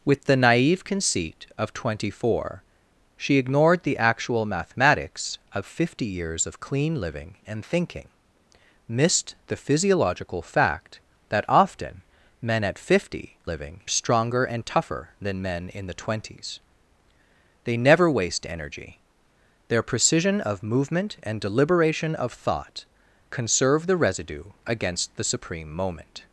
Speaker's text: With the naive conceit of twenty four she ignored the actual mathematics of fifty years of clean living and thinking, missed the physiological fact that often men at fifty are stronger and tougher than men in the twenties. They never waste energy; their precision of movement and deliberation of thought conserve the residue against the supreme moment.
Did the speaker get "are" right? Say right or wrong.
wrong